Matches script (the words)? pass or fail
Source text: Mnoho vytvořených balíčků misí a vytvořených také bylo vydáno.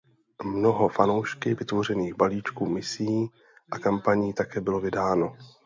fail